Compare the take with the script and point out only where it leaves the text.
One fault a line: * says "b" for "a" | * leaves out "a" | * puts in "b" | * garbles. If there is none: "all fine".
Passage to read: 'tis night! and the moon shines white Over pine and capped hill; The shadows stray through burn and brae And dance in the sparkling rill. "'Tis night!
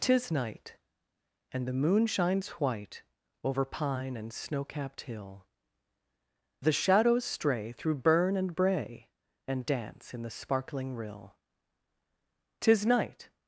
* puts in "snow"